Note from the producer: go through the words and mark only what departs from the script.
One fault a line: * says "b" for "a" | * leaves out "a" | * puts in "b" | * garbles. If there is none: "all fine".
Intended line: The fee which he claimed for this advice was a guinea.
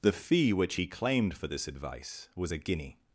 all fine